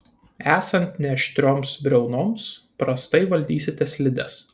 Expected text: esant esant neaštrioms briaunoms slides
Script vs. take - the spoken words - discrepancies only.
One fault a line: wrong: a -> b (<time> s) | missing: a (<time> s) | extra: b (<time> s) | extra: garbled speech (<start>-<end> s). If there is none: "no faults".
missing: esant (1.0 s)
extra: prastai valdysite (2.8 s)